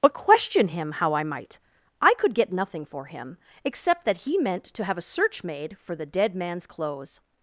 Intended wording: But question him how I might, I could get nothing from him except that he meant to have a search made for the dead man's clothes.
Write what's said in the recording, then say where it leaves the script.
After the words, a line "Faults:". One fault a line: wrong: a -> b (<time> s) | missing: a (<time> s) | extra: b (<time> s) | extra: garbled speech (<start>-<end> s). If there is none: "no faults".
But question him how I might, I could get nothing for him except that he meant to have a search made for the dead man's clothes.
Faults:
wrong: from -> for (2.8 s)